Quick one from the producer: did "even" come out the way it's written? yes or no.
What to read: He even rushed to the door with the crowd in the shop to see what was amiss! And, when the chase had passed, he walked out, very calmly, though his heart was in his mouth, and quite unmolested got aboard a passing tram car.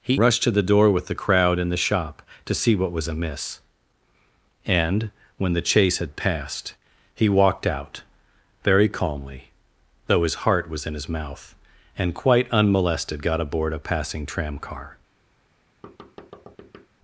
no